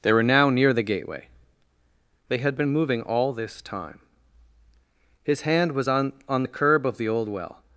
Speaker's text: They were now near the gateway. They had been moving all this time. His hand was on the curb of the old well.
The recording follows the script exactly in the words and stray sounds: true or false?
false